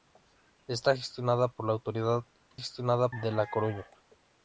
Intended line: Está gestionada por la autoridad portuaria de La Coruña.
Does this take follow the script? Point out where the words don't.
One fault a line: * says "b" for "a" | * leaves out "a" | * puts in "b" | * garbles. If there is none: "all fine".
* says "gestionada" for "portuaria"